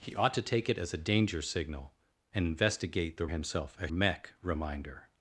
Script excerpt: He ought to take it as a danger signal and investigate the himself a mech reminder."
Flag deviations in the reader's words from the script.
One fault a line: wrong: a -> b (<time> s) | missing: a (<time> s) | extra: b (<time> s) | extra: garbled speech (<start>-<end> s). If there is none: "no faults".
no faults